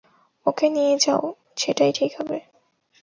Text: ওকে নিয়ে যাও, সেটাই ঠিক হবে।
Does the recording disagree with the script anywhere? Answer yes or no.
no